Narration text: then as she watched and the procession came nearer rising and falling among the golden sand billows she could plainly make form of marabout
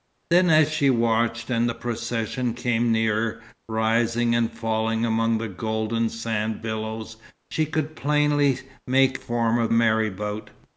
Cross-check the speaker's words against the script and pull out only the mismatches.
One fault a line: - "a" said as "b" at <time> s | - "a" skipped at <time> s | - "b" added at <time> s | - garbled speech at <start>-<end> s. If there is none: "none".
none